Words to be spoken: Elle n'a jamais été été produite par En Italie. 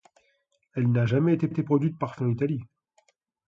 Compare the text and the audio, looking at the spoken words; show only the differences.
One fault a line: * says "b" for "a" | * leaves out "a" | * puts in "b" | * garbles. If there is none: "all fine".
all fine